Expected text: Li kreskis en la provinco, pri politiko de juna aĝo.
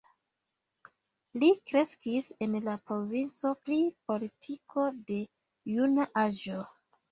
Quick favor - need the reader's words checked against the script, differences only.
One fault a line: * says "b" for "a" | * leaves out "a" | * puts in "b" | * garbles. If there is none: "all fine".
all fine